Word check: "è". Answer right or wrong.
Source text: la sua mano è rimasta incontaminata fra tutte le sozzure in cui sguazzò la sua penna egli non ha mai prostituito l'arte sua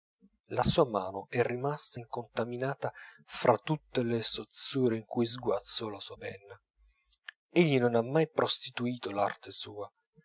right